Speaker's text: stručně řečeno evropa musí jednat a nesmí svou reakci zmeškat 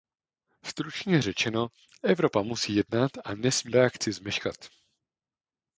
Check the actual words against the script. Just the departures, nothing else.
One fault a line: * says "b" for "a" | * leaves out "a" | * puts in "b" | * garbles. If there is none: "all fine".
* leaves out "svou"